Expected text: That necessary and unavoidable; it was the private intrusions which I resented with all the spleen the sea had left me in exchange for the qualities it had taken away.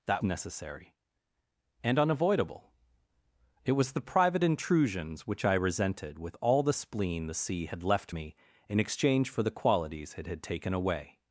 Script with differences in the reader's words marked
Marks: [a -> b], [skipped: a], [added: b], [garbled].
That necessary and unavoidable; it was the private intrusions which I resented with all the spleen the sea had left me in exchange for the qualities it had taken away.